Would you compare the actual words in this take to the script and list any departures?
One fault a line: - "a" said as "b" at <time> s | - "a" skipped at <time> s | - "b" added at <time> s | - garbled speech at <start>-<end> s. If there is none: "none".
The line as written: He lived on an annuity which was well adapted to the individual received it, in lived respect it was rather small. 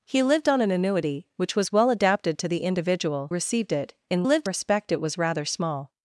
none